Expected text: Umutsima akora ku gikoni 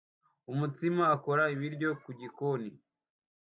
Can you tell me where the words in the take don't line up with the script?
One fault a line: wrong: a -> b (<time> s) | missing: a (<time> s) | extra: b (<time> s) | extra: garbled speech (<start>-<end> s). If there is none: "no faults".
extra: ibiryo (1.5 s)